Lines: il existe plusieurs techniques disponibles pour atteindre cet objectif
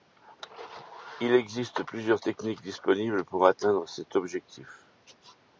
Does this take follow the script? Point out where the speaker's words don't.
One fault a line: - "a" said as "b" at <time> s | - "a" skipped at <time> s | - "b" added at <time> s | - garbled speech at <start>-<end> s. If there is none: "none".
none